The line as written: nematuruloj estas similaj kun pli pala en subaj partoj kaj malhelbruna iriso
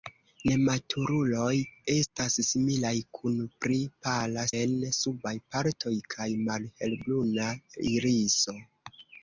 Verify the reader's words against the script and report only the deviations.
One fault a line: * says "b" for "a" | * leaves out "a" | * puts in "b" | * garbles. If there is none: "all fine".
all fine